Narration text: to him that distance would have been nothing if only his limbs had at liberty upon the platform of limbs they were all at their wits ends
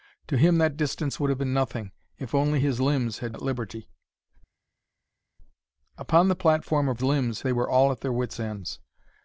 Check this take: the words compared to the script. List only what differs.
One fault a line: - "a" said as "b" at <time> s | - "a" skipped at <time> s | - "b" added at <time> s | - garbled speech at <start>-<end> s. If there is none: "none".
none